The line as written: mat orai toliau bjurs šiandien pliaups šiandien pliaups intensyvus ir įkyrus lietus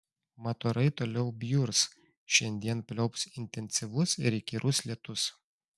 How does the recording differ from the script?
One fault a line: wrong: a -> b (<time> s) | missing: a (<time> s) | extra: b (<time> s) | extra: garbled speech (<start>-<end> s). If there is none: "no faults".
missing: šiandien pliaups (3.3 s)